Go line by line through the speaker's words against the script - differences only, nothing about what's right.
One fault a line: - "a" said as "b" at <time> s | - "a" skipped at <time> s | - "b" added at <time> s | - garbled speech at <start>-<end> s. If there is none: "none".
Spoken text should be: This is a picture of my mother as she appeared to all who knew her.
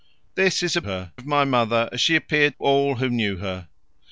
- "picture" said as "her" at 0.8 s
- "to" skipped at 2.6 s